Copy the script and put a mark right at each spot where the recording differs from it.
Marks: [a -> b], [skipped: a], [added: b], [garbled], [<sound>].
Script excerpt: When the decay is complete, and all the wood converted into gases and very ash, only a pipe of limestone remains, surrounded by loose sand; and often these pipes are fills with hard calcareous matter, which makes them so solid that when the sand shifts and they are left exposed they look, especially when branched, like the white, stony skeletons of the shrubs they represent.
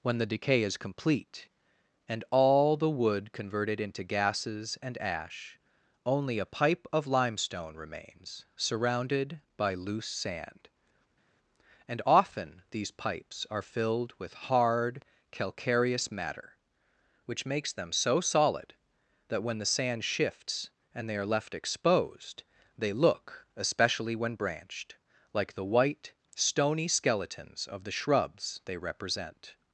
When the decay is complete, and all the wood converted into gases and [skipped: very] ash, only a pipe of limestone remains, surrounded by loose sand; and often these pipes are [fills -> filled] with hard calcareous matter, which makes them so solid that when the sand shifts and they are left exposed they look, especially when branched, like the white, stony skeletons of the shrubs they represent.